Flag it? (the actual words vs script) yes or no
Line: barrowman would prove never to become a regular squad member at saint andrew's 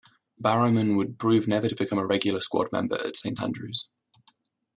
no